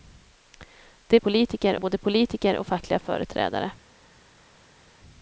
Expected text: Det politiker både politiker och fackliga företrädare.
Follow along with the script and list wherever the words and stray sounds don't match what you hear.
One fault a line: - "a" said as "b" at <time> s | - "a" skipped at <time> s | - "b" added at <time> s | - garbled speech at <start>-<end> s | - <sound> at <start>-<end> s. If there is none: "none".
none